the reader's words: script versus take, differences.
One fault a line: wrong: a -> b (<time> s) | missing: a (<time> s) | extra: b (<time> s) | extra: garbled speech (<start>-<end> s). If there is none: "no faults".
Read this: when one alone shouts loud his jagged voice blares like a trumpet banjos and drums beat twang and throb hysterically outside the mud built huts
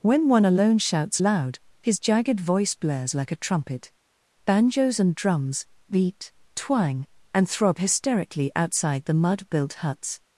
no faults